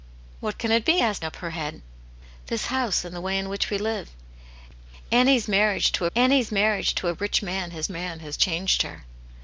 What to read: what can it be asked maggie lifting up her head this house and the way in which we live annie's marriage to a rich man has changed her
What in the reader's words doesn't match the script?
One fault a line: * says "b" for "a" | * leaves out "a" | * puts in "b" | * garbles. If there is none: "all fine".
* leaves out "maggie lifting"
* puts in "annie's marriage to"
* puts in "man has"